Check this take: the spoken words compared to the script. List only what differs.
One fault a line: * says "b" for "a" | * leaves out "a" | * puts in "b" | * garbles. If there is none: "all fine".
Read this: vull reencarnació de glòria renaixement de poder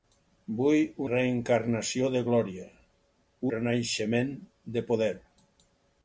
all fine